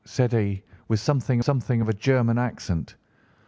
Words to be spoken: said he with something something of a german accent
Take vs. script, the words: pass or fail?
pass